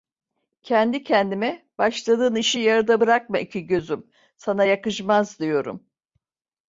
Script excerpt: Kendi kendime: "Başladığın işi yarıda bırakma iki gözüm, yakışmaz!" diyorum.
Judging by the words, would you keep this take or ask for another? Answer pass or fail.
fail